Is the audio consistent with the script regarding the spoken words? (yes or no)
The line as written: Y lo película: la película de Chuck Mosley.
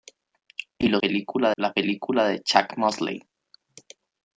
yes